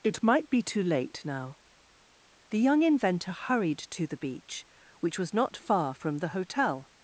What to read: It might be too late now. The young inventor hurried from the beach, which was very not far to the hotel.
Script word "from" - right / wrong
wrong